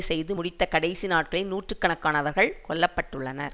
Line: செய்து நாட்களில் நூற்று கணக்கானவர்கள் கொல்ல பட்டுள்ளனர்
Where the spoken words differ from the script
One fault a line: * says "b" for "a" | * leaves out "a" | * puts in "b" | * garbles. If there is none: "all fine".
* puts in "முடித்த கடைசி"